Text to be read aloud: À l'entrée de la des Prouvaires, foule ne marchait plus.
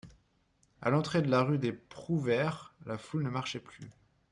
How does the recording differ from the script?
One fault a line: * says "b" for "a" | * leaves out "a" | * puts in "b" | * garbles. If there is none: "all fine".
* puts in "rue"
* puts in "la"